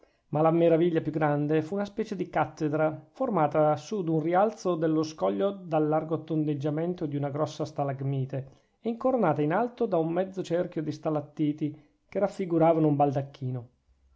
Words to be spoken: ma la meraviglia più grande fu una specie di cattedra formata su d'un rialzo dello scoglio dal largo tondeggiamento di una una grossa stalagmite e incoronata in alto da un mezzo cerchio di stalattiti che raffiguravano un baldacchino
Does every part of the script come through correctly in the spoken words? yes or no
no